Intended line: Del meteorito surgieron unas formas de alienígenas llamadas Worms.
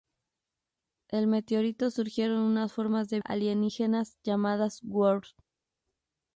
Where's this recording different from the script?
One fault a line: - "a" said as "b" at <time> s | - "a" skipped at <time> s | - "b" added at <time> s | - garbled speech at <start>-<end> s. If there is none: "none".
none